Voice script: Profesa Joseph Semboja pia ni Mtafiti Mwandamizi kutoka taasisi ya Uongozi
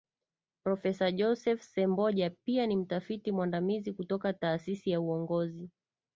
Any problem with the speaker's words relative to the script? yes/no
no